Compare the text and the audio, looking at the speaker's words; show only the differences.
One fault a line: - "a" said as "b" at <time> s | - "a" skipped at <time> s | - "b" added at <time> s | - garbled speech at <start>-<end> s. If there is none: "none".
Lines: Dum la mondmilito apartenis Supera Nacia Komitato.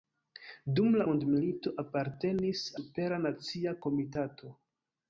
none